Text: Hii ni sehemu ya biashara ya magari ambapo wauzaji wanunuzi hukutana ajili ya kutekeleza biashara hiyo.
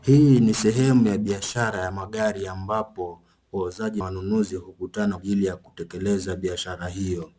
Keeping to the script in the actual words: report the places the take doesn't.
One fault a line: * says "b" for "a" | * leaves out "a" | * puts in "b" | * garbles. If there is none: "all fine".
all fine